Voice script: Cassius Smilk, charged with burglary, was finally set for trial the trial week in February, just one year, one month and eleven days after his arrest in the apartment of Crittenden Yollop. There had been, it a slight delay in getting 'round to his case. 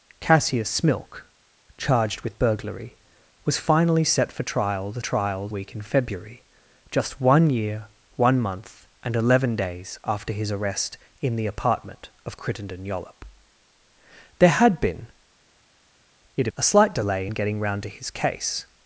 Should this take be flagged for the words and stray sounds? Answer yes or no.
no